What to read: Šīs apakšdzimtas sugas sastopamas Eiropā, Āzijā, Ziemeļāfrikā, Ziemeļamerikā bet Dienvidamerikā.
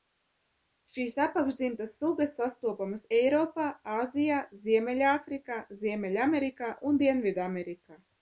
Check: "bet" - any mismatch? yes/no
yes